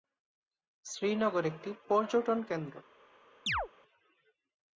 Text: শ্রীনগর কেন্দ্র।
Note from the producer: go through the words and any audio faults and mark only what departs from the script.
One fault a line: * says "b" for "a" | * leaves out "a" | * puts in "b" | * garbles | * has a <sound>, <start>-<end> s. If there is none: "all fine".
* puts in "একটি পর্যটন"
* has a chirp, 3.5-3.7 s